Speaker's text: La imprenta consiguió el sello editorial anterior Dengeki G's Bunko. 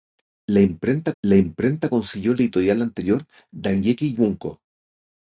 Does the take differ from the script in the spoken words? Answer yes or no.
yes